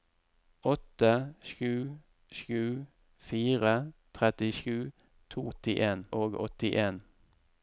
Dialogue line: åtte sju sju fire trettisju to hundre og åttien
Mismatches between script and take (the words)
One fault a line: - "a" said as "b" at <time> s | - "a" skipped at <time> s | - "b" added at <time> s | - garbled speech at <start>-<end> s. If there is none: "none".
- "hundre" said as "åttien" at 5.5 s